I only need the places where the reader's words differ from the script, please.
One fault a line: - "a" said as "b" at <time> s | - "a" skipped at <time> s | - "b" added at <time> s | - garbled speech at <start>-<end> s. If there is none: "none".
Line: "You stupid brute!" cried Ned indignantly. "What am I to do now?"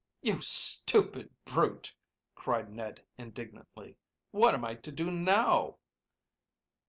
none